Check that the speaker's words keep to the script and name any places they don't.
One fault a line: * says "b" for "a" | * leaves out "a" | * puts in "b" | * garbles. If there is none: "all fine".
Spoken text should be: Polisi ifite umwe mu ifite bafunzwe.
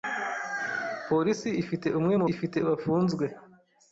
all fine